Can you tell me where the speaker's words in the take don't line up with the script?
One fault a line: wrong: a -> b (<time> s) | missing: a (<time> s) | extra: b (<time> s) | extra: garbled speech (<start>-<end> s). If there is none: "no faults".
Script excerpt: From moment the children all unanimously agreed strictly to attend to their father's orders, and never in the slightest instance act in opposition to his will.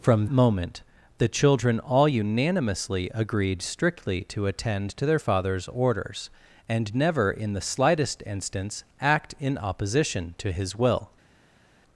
no faults